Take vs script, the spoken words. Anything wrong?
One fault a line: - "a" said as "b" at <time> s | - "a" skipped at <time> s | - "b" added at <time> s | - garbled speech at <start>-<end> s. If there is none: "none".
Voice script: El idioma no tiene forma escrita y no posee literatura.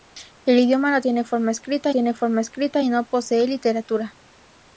- "tiene forma escrita" added at 1.9 s